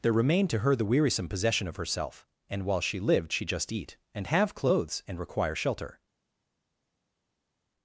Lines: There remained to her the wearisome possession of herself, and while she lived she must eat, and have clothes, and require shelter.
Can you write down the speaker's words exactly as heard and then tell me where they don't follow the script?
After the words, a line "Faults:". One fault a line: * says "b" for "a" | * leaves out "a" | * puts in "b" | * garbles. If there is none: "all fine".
There remained to her the wearisome possession of herself, and while she lived she just eat, and have clothes, and require shelter.
Faults:
* says "just" for "must"